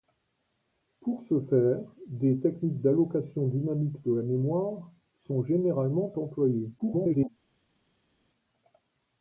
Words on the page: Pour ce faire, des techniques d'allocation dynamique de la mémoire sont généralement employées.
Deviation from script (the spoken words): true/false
true